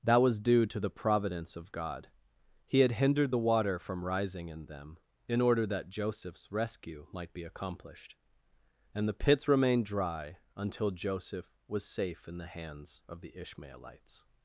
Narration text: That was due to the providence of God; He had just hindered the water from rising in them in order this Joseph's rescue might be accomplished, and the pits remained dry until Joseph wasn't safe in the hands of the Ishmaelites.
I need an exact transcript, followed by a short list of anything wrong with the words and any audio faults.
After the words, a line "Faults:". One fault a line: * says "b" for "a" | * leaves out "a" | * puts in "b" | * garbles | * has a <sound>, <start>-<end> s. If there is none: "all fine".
That was due to the providence of God; He had hindered the water from rising in them in order that Joseph's rescue might be accomplished, and the pits remained dry until Joseph was safe in the hands of the Ishmaelites.
Faults:
* leaves out "just"
* says "that" for "this"
* says "was" for "wasn't"